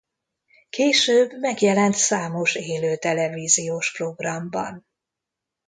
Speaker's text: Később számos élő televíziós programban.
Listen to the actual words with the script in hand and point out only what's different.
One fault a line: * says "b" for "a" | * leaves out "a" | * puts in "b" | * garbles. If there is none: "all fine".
* puts in "megjelent"